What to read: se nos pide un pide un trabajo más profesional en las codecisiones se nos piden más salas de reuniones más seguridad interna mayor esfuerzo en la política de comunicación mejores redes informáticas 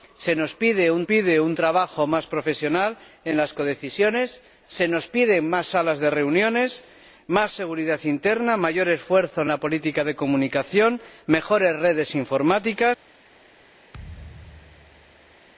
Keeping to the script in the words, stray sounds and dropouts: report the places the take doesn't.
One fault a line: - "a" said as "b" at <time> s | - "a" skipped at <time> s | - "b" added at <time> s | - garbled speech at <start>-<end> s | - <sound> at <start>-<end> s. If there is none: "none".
- thud at 13.9-15.4 s